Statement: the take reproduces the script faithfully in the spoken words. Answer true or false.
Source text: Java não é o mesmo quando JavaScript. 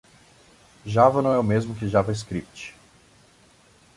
false